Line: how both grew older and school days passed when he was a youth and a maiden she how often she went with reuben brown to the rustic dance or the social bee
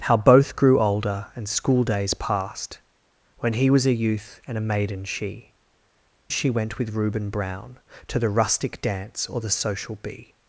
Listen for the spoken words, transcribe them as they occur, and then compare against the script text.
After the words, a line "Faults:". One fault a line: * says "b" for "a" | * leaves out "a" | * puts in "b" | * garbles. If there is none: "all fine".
how both grew older and school days passed when he was a youth and a maiden she she went with reuben brown to the rustic dance or the social bee
Faults:
* leaves out "how often"